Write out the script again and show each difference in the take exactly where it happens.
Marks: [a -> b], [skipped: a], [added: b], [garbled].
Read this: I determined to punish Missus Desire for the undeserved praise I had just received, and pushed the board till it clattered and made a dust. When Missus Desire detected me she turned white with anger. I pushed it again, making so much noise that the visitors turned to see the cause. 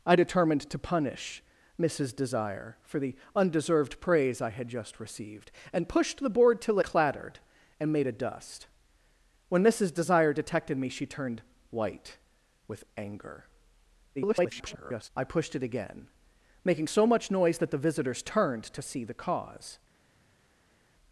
I determined to punish Missus Desire for the undeserved praise I had just received, and pushed the board till [skipped: it] clattered and made a dust. When Missus Desire detected me she turned white with anger. [garbled] I pushed it again, making so much noise that the visitors turned to see the cause.